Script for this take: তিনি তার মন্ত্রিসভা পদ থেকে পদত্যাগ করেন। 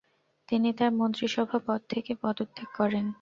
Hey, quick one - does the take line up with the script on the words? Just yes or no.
yes